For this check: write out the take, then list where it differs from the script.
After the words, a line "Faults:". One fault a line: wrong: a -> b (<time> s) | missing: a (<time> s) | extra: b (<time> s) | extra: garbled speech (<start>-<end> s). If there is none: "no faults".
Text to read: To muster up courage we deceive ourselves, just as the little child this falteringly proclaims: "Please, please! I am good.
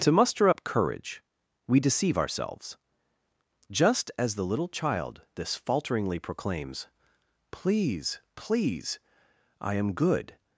To muster up courage we deceive ourselves, just as the little child this falteringly proclaims: "Please, please! I am good.
Faults:
no faults